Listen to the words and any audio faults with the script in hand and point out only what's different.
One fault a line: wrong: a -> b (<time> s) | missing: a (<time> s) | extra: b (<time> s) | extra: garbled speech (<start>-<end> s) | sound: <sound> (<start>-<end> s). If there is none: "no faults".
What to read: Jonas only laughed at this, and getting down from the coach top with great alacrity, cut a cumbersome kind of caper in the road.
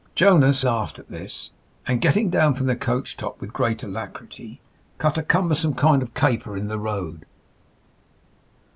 missing: only (0.7 s)